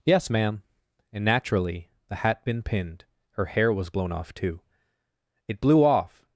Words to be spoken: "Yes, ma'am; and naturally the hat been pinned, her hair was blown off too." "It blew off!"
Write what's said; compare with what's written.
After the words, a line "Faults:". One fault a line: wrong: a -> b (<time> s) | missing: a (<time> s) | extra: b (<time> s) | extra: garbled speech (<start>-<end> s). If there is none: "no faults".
"Yes, ma'am; and naturally the hat been pinned, her hair was blown off too." "It blew off!"
Faults:
no faults